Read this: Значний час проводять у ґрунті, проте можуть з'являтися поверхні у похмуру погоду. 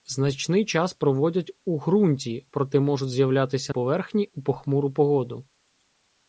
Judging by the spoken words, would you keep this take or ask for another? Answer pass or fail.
pass